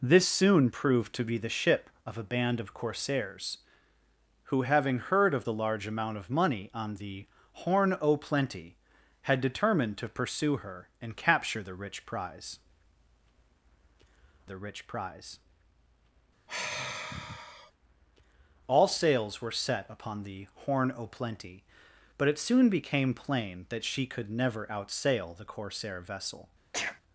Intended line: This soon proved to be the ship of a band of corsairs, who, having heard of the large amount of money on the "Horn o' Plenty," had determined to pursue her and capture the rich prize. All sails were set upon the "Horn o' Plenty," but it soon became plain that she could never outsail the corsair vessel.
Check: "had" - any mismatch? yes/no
no